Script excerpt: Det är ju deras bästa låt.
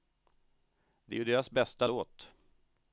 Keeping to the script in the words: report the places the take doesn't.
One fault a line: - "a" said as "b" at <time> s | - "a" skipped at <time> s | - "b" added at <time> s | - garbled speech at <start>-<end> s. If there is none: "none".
none